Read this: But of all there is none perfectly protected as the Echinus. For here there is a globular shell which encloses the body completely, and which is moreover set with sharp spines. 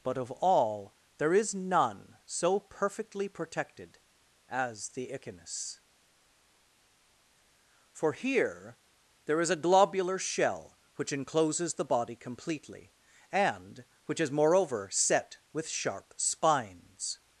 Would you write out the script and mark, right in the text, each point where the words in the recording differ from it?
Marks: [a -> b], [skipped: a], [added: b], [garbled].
But of all there is none [added: so] perfectly protected as the Echinus. For here there is a globular shell which encloses the body completely, and which is moreover set with sharp spines.